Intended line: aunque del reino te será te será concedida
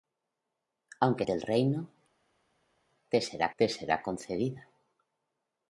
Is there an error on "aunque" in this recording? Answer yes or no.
no